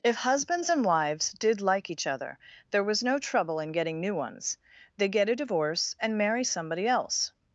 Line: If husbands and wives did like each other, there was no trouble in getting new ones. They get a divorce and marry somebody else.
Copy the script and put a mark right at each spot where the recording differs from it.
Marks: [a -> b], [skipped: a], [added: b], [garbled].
If husbands and wives did like each other, there was no trouble in getting new ones. They get a divorce and marry somebody else.